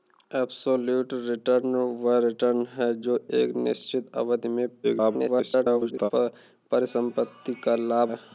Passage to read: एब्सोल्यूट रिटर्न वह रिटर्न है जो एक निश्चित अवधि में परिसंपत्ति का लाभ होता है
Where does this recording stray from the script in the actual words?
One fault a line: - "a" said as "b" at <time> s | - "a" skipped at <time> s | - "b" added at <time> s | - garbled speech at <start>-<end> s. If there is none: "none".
- garbled speech at 4.8-6.1 s
- "होता" skipped at 8.1 s